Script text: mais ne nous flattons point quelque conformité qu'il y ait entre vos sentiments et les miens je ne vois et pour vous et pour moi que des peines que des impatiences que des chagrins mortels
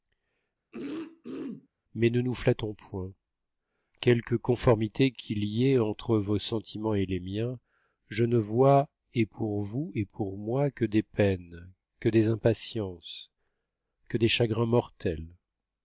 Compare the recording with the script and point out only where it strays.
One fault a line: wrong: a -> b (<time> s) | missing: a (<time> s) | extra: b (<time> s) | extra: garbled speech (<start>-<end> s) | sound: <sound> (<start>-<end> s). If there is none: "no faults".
sound: throat clearing (0.7-1.7 s)